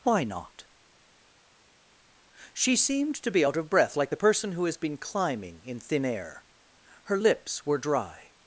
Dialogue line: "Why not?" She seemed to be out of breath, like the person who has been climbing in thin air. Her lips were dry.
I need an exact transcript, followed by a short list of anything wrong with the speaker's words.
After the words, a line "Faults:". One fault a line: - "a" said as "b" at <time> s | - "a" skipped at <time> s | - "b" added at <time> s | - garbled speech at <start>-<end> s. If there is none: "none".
"Why not?" She seemed to be out of breath, like the person who has been climbing in thin air. Her lips were dry.
Faults:
none